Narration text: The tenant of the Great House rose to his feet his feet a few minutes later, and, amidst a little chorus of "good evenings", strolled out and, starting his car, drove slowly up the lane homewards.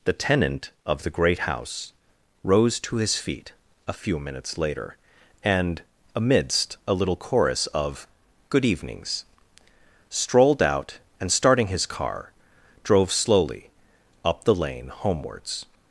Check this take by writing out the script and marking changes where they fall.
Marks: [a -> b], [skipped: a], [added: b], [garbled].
The tenant of the Great House rose to his feet [skipped: his feet] a few minutes later, and, amidst a little chorus of "good evenings", strolled out and, starting his car, drove slowly up the lane homewards.